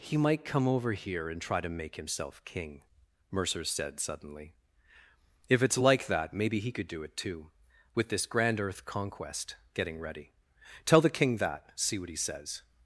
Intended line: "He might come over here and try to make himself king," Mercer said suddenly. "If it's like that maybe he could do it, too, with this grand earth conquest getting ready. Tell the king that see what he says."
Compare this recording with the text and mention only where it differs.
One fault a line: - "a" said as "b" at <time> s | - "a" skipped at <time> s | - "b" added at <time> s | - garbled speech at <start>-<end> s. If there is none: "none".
none